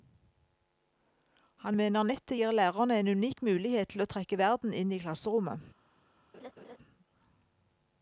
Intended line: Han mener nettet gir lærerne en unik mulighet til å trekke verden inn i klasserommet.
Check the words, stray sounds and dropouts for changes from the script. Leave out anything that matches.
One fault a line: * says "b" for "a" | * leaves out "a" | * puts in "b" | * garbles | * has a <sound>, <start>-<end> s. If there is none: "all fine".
* has a laugh, 6.3-6.8 s